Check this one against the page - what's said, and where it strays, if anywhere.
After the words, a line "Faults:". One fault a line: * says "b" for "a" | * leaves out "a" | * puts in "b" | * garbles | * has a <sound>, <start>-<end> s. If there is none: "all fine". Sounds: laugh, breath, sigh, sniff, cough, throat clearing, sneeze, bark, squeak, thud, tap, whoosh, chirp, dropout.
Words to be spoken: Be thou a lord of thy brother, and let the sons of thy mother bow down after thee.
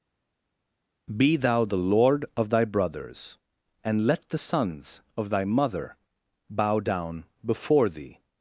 Be thou the lord of thy brothers, and let the sons of thy mother bow down before thee.
Faults:
* says "the" for "a"
* says "brothers" for "brother"
* says "before" for "after"